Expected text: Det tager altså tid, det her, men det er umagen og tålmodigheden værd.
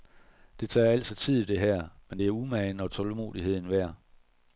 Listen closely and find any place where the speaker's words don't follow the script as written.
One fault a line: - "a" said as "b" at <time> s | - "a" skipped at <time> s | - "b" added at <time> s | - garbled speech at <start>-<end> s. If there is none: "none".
none